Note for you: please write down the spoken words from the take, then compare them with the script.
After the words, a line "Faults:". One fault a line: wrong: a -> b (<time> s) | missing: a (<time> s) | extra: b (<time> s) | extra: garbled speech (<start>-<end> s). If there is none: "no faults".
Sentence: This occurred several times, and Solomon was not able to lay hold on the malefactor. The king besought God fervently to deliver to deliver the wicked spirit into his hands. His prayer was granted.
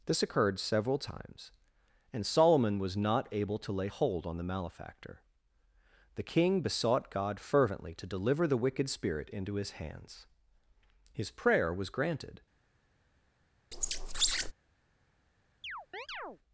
This occurred several times, and Solomon was not able to lay hold on the malefactor. The king besought God fervently to deliver the wicked spirit into his hands. His prayer was granted.
Faults:
missing: to deliver (8.5 s)